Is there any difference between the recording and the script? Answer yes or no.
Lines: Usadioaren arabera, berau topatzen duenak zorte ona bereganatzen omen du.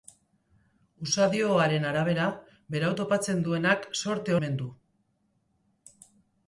yes